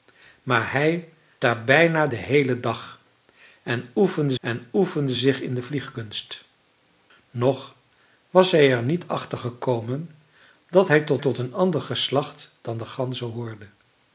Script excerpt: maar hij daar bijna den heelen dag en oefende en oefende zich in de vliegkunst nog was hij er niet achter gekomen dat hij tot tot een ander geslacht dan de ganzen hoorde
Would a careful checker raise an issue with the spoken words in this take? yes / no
no